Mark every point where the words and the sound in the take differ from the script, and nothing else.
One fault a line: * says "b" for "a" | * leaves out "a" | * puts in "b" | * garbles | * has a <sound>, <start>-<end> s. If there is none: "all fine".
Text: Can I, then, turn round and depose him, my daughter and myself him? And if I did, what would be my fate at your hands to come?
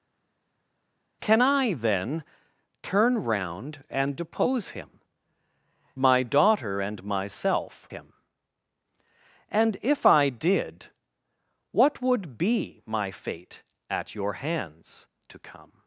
all fine